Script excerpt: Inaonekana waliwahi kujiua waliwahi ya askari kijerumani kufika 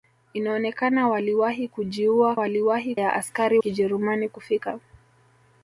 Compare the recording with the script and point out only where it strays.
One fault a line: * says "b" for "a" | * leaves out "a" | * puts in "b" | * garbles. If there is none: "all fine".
all fine